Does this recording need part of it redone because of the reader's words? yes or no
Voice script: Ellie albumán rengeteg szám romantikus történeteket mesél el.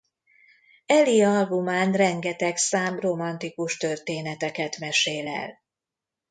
no